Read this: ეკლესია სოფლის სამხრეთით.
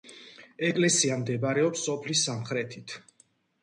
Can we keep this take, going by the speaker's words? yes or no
no